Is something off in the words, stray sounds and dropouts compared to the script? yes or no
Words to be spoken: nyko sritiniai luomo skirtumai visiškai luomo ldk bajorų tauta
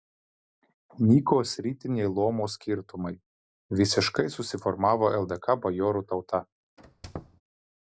yes